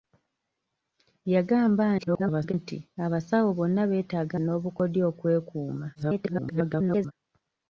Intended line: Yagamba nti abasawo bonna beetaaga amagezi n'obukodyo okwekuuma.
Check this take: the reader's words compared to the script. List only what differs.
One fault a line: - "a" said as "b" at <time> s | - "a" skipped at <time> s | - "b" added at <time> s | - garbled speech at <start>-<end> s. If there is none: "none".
- garbled speech at 2.0-2.5 s
- "amagezi" skipped at 4.4 s
- garbled speech at 6.0-7.1 s